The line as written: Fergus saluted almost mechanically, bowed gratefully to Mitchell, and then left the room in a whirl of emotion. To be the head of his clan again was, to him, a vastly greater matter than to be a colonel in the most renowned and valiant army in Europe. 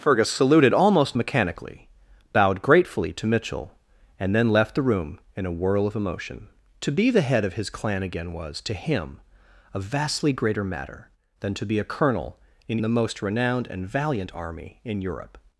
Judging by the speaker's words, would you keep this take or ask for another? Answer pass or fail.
pass